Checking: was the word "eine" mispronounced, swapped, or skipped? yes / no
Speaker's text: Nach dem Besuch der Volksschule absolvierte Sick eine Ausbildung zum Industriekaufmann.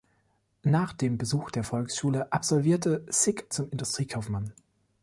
yes